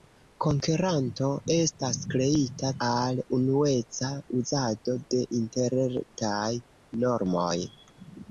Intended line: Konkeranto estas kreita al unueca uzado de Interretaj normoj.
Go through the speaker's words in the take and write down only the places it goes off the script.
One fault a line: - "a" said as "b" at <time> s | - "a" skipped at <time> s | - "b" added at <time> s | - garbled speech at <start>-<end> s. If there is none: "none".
none